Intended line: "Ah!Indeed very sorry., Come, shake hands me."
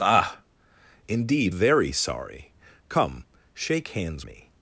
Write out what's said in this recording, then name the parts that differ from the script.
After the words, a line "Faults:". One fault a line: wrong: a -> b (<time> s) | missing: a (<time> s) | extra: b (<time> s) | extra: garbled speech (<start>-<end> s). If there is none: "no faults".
"Ah!Indeed very sorry., Come, shake hands me."
Faults:
no faults